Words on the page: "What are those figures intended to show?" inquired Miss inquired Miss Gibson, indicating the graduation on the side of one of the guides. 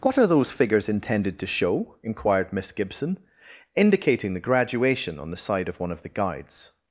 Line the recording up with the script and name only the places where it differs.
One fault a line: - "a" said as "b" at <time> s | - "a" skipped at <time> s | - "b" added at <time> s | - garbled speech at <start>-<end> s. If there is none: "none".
- "inquired Miss" skipped at 2.7 s